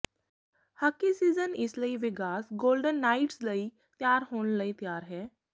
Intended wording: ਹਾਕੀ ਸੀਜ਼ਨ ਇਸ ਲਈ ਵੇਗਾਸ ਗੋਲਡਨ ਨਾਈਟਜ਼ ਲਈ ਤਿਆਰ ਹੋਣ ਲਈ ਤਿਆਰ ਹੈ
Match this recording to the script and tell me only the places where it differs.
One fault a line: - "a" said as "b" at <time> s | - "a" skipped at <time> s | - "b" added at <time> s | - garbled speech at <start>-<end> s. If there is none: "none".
none